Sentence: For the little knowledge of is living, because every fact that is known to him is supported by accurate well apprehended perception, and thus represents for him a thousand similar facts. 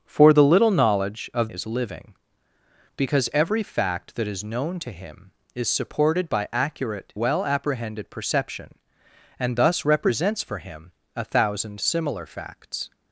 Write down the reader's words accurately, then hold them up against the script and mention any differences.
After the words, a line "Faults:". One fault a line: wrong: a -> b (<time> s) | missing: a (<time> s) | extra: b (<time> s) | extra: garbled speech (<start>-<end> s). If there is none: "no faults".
For the little knowledge of is living, because every fact that is known to him is supported by accurate well apprehended perception, and thus represents for him a thousand similar facts.
Faults:
no faults